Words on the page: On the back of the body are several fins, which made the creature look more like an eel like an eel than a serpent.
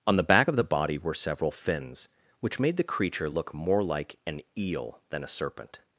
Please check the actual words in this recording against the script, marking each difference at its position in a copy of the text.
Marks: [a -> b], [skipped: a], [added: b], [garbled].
On the back of the body [are -> were] several fins, which made the creature look more like an eel [skipped: like an eel] than a serpent.